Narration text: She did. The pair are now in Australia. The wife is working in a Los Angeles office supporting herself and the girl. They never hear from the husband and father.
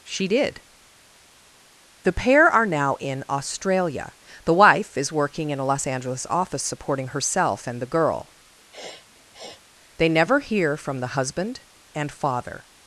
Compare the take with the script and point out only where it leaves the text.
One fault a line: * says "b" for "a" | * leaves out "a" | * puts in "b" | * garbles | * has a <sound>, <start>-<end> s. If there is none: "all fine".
* has a sniff, 8.7-9.6 s